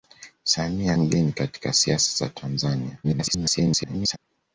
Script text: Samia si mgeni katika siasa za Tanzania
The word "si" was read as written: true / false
false